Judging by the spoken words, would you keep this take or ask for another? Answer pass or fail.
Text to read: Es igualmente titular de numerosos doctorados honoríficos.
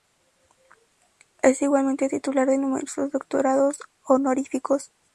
pass